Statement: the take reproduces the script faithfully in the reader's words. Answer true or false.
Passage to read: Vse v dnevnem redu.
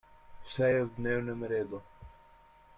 false